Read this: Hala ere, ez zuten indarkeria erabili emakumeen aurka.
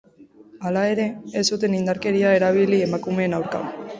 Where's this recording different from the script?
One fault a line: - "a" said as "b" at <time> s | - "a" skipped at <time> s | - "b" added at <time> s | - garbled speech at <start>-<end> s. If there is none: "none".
none